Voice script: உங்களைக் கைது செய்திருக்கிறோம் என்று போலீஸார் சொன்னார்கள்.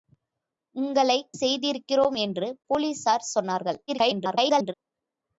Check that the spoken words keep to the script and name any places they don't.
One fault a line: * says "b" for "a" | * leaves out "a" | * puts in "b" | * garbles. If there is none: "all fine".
* leaves out "கைது"
* garbles